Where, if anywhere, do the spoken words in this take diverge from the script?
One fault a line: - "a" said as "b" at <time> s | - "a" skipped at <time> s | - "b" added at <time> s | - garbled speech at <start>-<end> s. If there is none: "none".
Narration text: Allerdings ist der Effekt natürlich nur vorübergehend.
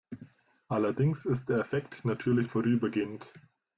- "nur" skipped at 2.5 s